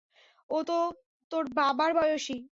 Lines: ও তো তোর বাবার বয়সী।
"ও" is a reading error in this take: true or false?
false